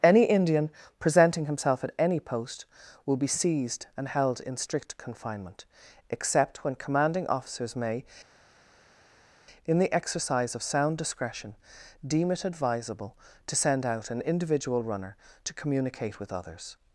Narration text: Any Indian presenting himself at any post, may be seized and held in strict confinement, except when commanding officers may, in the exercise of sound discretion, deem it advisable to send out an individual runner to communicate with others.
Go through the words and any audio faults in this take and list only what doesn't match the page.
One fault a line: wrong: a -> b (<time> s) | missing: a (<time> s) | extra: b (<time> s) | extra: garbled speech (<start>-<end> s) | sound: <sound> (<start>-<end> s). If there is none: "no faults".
wrong: may -> will (3.1 s)